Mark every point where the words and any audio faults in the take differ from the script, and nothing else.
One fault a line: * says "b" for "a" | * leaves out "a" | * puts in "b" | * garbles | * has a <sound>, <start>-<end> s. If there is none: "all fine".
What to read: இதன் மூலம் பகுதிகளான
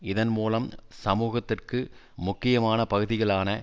* puts in "சமூகத்திற்கு முக்கியமான"